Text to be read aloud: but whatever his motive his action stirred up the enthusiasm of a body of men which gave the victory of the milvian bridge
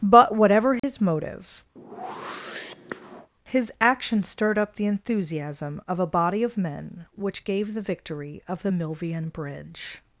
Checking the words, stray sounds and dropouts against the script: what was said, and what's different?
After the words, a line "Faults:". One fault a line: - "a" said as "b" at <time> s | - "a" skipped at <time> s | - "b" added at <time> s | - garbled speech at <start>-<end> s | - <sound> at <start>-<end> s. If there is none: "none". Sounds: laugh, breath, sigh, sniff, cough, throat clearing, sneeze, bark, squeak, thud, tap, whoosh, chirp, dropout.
but whatever his motive his action stirred up the enthusiasm of a body of men which gave the victory of the milvian bridge
Faults:
- dropout at 0.8-0.8 s
- whoosh at 1.8-3.3 s